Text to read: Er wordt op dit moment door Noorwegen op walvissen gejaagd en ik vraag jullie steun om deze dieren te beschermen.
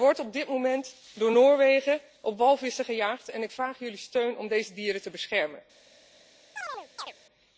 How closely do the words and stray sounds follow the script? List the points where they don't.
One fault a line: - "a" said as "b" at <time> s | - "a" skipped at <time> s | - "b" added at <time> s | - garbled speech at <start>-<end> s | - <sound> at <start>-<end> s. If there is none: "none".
- chirp at 6.6-7.1 s